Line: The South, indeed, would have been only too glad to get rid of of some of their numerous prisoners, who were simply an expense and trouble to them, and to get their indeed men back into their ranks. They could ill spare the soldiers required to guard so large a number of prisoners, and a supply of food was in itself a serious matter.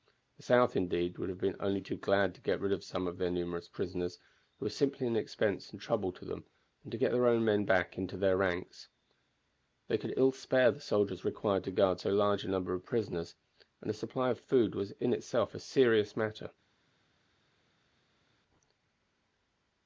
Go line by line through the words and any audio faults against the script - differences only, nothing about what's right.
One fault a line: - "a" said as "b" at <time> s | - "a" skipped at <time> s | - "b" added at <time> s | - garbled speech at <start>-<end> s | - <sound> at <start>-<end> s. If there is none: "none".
- "of" skipped at 2.8 s
- "indeed" said as "own" at 7.3 s